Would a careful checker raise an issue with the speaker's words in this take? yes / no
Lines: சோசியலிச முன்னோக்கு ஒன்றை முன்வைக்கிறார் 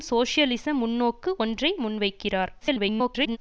yes